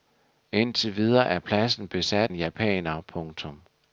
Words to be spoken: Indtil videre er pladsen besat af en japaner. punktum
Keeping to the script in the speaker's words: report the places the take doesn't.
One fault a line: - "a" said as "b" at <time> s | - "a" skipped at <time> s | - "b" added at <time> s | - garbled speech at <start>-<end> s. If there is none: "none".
- "af" skipped at 2.3 s